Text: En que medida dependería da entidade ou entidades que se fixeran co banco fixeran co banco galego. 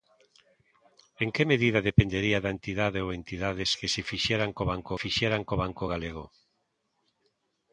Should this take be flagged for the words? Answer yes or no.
no